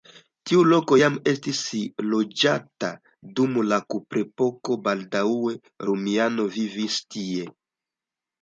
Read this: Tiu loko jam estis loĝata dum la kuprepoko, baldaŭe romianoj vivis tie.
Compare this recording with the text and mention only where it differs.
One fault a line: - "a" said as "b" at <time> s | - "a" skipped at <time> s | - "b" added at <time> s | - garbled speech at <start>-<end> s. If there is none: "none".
none